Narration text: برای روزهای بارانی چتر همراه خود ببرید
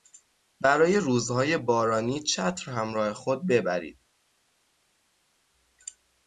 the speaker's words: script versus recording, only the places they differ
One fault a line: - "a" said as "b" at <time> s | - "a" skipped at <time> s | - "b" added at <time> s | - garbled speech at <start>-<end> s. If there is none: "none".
none